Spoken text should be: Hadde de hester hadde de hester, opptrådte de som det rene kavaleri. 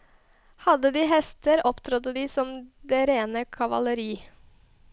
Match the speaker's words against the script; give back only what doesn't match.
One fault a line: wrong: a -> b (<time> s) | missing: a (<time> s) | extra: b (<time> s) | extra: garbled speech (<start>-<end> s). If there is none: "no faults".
missing: hadde de hester (1.7 s)